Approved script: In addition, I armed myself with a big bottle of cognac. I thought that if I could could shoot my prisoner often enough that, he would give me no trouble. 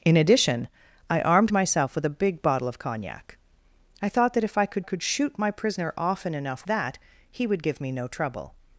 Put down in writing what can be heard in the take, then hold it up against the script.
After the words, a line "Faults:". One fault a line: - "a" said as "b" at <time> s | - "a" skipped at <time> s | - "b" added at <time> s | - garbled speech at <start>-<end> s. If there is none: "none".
In addition, I armed myself with a big bottle of cognac. I thought that if I could could shoot my prisoner often enough that, he would give me no trouble.
Faults:
none